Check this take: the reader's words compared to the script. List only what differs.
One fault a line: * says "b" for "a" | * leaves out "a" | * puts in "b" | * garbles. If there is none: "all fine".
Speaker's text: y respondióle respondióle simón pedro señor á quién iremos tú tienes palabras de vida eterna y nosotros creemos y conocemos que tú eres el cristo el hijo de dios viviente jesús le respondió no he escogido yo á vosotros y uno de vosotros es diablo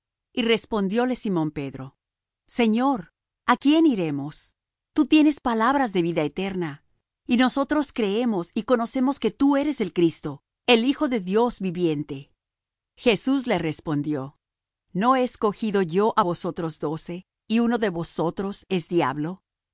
* leaves out "respondióle"
* puts in "doce"